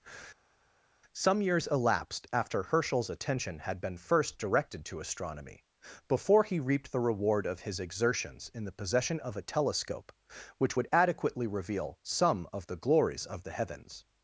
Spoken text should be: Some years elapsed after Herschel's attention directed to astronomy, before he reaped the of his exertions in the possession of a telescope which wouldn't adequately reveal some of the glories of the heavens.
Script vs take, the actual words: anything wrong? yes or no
yes